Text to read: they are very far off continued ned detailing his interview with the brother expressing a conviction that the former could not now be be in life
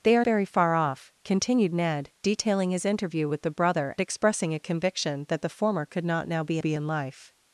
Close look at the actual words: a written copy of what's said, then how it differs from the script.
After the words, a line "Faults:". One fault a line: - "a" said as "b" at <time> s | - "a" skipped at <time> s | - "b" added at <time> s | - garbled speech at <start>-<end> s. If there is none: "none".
they are very far off continued ned detailing his interview with the brother expressing a conviction that the former could not now be be in life
Faults:
none